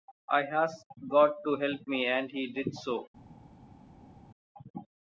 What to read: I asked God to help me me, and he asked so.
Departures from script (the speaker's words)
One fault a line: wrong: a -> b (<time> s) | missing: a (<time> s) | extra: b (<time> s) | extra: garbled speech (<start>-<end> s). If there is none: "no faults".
missing: me (2.1 s)
wrong: asked -> did (2.5 s)